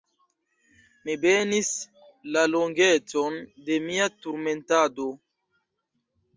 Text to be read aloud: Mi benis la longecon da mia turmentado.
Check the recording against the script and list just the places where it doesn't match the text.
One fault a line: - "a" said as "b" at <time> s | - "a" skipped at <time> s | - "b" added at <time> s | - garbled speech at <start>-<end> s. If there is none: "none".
- "da" said as "de" at 3.7 s